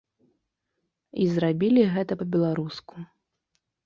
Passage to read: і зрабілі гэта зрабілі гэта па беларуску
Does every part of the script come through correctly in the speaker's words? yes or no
no